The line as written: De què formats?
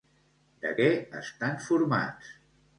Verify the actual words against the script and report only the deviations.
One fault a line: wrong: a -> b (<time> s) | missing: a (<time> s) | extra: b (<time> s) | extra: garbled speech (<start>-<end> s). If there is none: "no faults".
extra: estan (1.2 s)